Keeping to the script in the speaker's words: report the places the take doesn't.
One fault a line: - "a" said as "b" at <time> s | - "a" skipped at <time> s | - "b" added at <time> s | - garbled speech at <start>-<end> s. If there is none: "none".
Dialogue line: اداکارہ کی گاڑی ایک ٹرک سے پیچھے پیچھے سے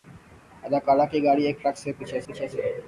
none